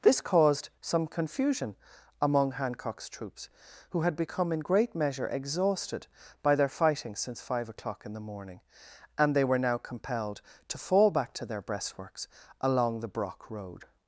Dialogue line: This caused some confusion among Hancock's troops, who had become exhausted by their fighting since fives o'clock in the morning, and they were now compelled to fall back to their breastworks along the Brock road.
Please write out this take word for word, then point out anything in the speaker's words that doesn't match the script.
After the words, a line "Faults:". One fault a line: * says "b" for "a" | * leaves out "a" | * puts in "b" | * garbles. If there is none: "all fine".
This caused some confusion among Hancock's troops, who had become in great measure exhausted by their fighting since five o'clock in the morning, and they were now compelled to fall back to their breastworks along the Brock road.
Faults:
* puts in "in great measure"
* says "five" for "fives"